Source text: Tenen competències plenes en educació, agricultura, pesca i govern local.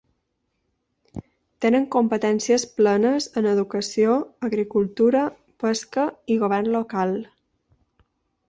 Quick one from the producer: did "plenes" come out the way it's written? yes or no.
yes